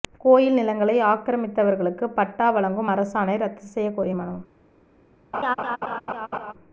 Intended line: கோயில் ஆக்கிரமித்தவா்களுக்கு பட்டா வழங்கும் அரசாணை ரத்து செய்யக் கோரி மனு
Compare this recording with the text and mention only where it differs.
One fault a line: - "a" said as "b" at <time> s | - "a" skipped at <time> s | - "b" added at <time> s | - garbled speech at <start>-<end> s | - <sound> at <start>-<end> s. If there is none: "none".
- "நிலங்களை" added at 0.6 s
- laugh at 5.3-6.5 s